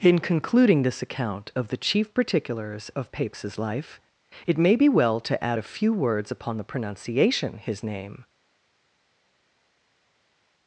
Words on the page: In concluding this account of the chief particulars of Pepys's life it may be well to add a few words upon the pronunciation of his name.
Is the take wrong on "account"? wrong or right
right